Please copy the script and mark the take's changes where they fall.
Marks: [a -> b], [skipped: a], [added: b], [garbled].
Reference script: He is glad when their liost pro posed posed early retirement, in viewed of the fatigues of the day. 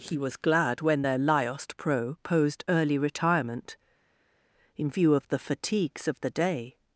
He [is -> was] glad when their liost pro posed [skipped: posed] early retirement, in [viewed -> view] of the fatigues of the day.